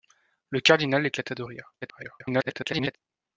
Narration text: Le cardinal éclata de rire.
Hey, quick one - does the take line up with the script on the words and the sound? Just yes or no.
no